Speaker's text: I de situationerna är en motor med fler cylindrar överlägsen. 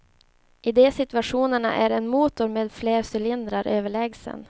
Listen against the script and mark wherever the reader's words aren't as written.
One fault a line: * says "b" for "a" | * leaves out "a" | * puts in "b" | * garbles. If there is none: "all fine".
all fine